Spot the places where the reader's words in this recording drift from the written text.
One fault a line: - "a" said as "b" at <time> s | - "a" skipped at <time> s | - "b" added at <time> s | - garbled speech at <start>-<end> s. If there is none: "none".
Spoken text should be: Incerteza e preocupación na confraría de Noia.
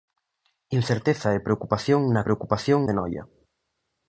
- "confraría" said as "preocupación" at 2.2 s